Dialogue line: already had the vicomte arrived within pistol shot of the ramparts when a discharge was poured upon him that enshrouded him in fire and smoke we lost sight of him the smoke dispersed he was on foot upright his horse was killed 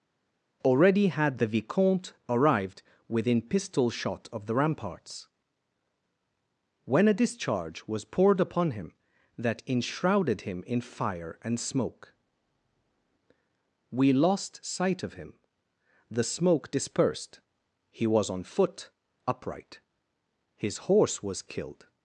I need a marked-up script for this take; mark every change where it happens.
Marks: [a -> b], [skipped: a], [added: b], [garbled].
already had the vicomte arrived within pistol shot of the ramparts when a discharge was poured upon him that enshrouded him in fire and smoke we lost sight of him the smoke dispersed he was on foot upright his horse was killed